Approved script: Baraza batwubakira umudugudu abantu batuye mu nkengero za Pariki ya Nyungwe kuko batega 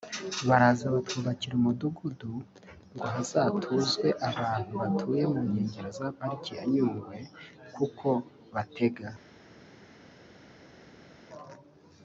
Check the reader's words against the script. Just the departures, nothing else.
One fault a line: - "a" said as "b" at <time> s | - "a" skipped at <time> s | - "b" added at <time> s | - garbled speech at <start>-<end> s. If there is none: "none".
- "ngo hazatuzwe" added at 2.9 s